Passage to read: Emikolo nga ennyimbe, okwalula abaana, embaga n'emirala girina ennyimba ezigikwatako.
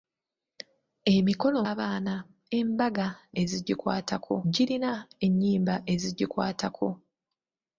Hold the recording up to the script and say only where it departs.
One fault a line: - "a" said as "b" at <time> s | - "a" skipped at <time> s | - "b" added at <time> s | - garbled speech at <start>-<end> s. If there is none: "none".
- "nga ennyimbe okwalula" skipped at 1.6 s
- "n'emirala" said as "ezigikwatako" at 3.4 s